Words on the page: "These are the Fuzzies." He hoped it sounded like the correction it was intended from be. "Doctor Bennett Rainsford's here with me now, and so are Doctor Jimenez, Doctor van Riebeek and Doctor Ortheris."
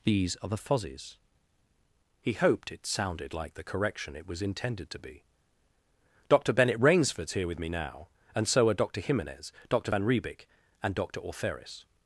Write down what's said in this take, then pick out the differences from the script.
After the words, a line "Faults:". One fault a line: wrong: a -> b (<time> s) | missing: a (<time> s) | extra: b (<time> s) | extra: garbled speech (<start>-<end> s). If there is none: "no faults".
"These are the Fuzzies." He hoped it sounded like the correction it was intended to be. "Doctor Bennett Rainsford's here with me now, and so are Doctor Jimenez, Doctor van Riebeek and Doctor Ortheris."
Faults:
wrong: from -> to (4.9 s)